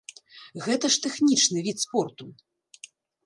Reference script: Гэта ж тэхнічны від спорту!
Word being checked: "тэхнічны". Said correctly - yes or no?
yes